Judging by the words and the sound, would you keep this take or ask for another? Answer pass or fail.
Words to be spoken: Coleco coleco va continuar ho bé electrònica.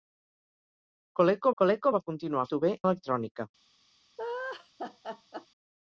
fail